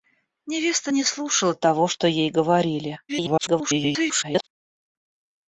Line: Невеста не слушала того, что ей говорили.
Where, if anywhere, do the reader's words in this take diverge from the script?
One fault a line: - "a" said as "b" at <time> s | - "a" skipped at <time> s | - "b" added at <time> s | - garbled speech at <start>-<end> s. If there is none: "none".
- garbled speech at 3.1-4.5 s